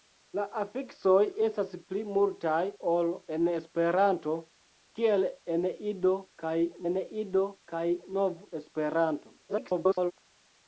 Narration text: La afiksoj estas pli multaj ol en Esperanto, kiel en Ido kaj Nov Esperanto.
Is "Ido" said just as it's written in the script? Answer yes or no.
yes